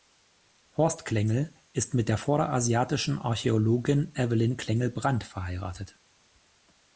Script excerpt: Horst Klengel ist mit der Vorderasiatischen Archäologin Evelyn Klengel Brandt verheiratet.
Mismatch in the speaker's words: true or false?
false